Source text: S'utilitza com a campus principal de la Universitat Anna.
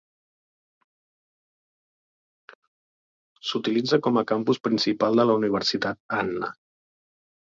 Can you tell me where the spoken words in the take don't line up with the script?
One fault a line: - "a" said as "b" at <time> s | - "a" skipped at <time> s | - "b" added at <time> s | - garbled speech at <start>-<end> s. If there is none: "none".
none